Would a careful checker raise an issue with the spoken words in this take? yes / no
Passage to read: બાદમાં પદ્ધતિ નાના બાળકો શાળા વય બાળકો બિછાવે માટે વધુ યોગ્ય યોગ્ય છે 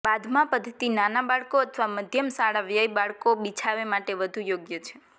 yes